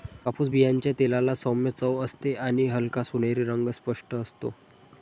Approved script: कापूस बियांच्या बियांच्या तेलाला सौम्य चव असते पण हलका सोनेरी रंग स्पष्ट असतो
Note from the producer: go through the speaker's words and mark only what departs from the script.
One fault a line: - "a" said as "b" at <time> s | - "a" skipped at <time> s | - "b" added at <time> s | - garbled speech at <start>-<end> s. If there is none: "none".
- "बियांच्या" skipped at 0.9 s
- "पण" said as "आणि" at 2.4 s